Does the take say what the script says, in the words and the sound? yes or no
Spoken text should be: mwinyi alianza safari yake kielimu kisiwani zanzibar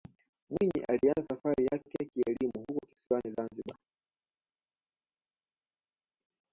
no